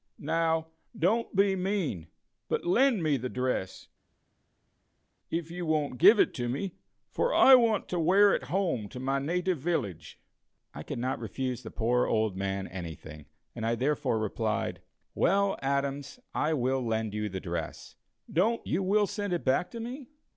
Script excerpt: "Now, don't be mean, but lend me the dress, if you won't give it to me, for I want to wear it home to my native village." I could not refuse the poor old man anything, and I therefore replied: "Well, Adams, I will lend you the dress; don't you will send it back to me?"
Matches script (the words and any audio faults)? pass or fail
pass